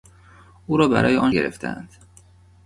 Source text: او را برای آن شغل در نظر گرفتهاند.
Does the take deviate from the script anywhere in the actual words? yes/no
yes